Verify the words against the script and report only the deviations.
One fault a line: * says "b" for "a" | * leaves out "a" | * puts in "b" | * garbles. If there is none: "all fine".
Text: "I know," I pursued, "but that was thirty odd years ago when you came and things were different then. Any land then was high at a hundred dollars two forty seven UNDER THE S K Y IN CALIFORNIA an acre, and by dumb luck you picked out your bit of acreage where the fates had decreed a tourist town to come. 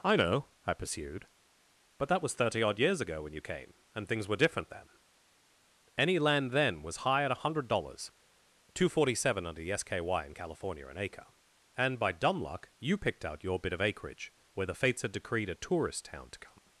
all fine